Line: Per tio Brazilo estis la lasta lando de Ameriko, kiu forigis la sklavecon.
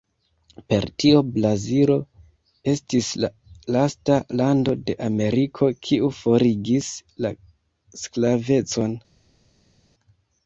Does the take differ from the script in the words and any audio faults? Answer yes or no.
no